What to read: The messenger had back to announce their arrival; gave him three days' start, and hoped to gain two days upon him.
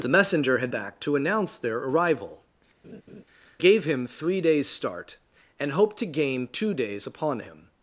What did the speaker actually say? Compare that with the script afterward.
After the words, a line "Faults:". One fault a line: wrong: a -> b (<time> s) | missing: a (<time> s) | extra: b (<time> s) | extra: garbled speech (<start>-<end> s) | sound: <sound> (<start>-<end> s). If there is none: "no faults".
The messenger had back to announce their arrival; gave him three days' start, and hoped to gain two days upon him.
Faults:
sound: laugh (2.8-3.2 s)